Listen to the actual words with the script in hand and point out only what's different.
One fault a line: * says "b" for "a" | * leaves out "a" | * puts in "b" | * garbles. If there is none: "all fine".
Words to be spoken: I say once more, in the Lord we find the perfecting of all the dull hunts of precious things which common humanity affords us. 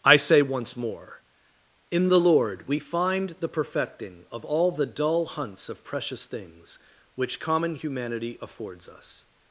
all fine